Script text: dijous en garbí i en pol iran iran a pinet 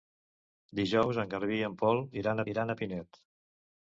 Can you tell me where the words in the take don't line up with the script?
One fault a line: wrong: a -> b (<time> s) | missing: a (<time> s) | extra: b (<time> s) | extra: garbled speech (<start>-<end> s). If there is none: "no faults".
no faults